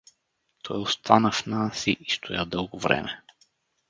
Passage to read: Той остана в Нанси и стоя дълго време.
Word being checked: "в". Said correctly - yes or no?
yes